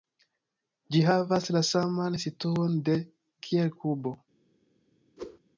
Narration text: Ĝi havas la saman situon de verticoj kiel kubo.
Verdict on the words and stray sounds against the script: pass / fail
fail